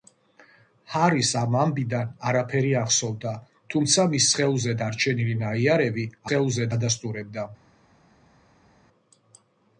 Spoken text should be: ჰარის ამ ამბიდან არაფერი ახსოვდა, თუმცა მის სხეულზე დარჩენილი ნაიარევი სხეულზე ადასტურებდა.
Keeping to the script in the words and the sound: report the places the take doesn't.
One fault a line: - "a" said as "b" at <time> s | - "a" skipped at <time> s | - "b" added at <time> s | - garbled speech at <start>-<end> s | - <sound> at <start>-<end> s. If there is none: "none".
none